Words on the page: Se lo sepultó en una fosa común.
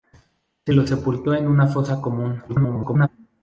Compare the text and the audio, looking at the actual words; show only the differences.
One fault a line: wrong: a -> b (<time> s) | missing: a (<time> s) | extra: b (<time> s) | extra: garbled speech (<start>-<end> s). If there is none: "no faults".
extra: garbled speech (2.5-3.1 s)